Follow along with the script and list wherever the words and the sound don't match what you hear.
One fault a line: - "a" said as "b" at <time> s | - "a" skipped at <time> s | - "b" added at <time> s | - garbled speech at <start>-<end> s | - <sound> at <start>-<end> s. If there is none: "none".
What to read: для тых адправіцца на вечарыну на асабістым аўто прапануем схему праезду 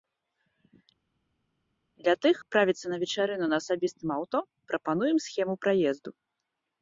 none